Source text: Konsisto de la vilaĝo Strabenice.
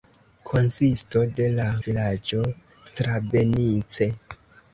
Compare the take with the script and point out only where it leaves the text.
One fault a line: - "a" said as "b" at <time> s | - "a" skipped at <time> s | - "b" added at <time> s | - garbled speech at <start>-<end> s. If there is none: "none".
none